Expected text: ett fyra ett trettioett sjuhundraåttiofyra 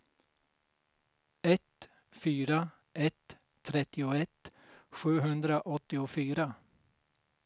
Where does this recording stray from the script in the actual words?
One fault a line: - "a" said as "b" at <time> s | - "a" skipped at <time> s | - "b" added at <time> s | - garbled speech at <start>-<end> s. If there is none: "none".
none